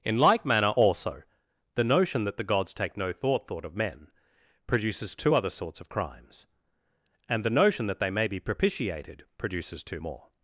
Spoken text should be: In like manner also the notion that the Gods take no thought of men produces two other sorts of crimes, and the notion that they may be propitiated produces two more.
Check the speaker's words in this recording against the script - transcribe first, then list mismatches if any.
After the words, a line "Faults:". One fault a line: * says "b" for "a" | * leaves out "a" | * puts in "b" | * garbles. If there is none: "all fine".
In like manner also the notion that the Gods take no thought thought of men produces two other sorts of crimes, and the notion that they may be propitiated produces two more.
Faults:
* puts in "thought"